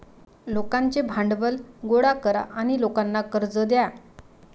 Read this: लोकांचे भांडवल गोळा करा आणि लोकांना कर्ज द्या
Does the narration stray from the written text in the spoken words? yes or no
no